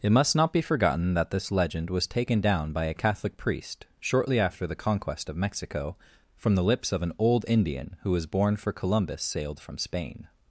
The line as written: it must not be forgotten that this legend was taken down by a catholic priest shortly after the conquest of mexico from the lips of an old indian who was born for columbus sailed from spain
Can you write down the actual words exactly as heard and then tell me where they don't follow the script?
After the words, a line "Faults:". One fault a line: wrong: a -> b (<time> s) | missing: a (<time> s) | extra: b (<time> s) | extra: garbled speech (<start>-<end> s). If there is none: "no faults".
it must not be forgotten that this legend was taken down by a catholic priest shortly after the conquest of mexico from the lips of an old indian who was born for columbus sailed from spain
Faults:
no faults